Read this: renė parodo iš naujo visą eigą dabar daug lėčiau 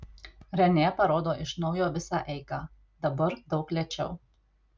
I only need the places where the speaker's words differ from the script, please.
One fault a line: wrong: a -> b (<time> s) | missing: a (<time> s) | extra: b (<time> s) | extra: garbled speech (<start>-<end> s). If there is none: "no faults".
no faults